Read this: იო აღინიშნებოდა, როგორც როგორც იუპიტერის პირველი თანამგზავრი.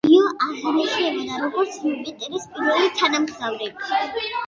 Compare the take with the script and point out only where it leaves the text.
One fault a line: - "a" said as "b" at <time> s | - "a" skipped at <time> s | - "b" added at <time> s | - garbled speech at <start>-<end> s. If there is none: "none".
- "როგორც" skipped at 1.8 s